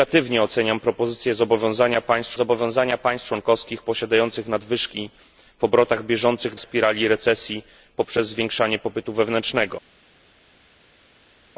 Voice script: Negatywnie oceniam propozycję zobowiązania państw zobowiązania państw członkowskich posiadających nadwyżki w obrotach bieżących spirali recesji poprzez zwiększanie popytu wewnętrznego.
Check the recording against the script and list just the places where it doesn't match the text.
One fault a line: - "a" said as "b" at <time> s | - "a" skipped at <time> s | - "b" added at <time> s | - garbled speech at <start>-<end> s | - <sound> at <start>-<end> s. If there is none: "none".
none